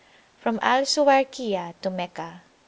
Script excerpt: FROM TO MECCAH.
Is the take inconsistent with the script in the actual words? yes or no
yes